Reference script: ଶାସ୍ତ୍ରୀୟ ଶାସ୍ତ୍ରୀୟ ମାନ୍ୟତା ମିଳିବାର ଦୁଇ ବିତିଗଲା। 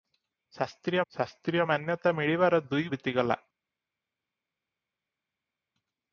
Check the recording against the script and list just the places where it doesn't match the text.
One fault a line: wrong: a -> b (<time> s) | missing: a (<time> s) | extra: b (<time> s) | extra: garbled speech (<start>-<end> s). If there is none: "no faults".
no faults